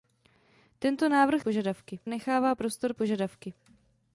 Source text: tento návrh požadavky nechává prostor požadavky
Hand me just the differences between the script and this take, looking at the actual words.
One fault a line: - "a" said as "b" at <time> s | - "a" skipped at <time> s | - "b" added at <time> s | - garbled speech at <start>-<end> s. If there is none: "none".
none